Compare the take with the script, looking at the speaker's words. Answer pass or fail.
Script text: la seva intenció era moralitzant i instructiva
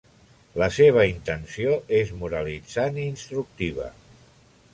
fail